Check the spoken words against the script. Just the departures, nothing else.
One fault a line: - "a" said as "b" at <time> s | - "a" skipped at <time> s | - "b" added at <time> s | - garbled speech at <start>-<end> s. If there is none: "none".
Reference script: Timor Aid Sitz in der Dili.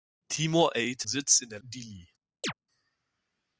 none